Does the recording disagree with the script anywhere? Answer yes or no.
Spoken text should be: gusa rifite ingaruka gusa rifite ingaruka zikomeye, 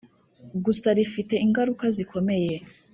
yes